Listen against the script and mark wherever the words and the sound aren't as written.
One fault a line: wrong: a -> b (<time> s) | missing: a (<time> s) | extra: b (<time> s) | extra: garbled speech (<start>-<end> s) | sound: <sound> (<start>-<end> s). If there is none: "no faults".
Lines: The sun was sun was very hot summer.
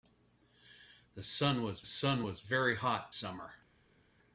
no faults